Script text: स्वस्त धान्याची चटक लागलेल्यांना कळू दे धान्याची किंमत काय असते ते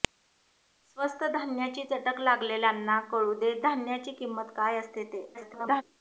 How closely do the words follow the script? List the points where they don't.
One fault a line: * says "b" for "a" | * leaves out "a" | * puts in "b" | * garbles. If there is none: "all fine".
* garbles